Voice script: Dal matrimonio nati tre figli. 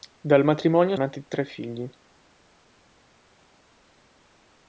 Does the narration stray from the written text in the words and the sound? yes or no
no